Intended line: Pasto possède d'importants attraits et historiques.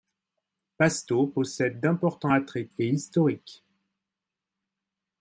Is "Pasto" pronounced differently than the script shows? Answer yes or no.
no